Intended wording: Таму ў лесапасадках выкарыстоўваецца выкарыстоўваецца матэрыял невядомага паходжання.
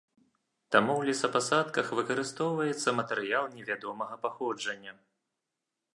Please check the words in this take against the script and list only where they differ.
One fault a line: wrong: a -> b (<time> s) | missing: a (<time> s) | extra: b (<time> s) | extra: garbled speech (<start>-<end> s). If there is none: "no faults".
missing: выкарыстоўваецца (3.0 s)